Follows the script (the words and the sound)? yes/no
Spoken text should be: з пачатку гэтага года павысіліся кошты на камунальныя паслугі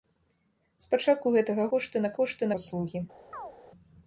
no